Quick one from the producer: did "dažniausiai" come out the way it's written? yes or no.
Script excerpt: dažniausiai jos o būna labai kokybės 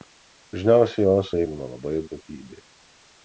yes